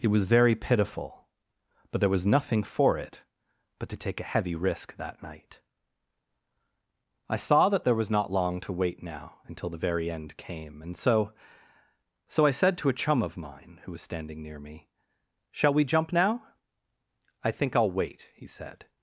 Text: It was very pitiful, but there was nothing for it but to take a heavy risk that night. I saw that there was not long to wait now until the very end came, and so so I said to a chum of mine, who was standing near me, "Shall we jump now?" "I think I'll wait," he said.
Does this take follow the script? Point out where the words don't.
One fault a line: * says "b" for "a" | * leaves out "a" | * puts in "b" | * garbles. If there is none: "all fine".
all fine